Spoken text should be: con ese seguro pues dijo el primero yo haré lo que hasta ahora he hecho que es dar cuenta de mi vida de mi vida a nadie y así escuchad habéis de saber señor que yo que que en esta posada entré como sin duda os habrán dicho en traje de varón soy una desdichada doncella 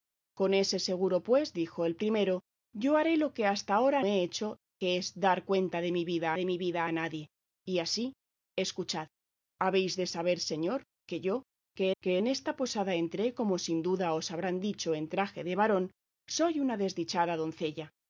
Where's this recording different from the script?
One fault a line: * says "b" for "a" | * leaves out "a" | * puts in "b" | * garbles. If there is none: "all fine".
all fine